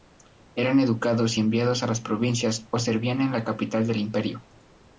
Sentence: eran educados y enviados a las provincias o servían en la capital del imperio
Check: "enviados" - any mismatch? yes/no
no